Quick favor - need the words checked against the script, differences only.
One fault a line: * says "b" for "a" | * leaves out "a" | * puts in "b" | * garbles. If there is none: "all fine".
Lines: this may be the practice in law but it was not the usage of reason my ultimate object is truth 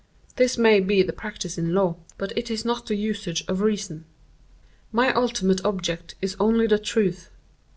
* says "is" for "was"
* puts in "only the"